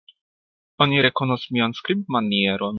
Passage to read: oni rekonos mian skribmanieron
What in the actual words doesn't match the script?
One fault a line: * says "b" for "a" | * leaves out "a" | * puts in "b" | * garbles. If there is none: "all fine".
all fine